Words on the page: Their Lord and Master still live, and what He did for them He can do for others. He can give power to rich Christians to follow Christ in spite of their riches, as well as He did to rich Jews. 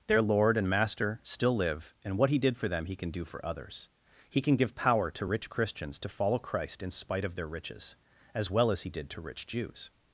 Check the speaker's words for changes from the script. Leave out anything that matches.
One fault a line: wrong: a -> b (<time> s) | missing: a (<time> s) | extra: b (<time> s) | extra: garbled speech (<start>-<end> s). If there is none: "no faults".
no faults